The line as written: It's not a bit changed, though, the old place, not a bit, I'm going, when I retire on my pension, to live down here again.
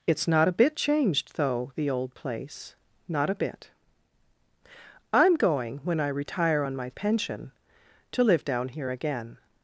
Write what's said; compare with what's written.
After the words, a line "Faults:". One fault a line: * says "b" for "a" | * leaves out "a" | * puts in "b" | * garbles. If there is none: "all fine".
It's not a bit changed, though, the old place, not a bit, I'm going, when I retire on my pension, to live down here again.
Faults:
all fine